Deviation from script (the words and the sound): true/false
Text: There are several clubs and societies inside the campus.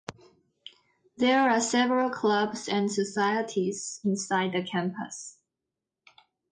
false